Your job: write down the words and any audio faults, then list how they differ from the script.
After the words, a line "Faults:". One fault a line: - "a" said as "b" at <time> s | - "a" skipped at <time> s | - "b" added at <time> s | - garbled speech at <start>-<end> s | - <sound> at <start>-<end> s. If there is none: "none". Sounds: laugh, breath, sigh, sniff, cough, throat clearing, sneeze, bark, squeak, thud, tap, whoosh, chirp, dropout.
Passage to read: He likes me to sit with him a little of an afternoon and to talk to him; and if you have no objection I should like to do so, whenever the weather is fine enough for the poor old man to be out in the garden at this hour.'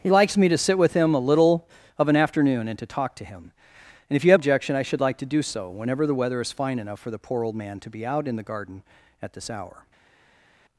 He likes me to sit with him a little of an afternoon and to talk to him; and if you have objection I should like to do so, whenever the weather is fine enough for the poor old man to be out in the garden at this hour.'
Faults:
- "no" skipped at 4.4 s